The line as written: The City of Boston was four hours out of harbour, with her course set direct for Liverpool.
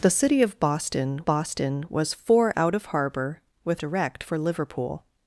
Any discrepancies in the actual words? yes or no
yes